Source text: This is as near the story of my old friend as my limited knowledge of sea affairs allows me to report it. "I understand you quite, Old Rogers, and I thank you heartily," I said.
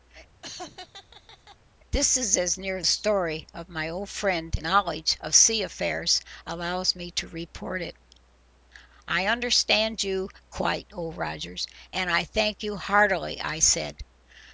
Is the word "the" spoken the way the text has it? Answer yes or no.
no